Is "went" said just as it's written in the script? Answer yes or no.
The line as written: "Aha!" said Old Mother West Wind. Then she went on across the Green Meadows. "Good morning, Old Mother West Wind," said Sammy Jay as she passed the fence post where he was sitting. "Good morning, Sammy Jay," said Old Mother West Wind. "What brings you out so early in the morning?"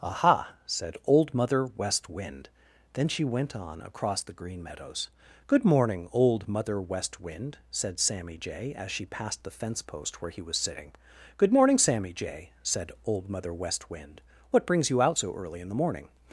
yes